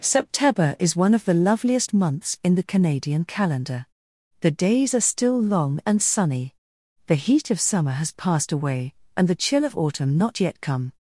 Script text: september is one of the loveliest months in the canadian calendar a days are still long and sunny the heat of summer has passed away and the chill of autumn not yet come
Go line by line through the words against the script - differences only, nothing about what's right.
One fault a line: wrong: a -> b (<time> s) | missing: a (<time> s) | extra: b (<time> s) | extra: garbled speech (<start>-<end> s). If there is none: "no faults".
wrong: a -> the (4.4 s)